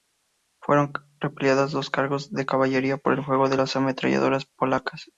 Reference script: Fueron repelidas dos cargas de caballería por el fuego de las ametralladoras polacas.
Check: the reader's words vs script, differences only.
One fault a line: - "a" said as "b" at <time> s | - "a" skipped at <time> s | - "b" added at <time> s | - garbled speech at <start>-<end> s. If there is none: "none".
none